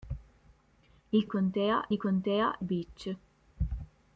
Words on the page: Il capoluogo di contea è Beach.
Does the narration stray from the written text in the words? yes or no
yes